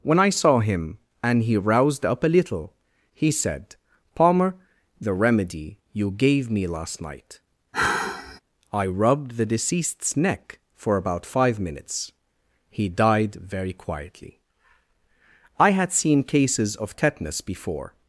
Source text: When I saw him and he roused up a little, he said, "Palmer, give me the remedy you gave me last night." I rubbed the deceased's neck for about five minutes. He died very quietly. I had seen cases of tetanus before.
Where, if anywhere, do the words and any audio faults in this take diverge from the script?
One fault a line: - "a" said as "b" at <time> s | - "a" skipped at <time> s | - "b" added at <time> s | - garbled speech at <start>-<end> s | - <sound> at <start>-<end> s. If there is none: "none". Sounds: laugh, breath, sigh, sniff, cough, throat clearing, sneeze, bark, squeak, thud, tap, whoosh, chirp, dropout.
- "give me" skipped at 4.5 s
- sigh at 7.7-8.4 s